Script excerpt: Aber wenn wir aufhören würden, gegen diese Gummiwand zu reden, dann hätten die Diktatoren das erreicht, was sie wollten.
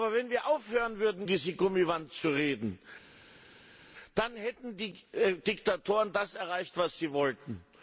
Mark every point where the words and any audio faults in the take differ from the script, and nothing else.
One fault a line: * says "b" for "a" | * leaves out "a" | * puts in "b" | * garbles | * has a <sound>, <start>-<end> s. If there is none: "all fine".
* leaves out "gegen"